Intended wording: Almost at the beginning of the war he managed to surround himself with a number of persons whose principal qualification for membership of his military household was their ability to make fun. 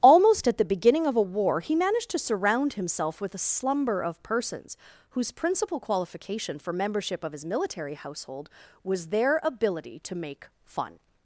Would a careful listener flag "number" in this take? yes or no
yes